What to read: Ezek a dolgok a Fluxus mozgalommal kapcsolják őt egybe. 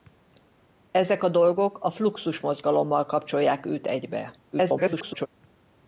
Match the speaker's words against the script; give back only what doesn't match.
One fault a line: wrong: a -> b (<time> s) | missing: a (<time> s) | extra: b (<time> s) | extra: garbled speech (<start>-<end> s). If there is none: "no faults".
extra: garbled speech (4.5-5.3 s)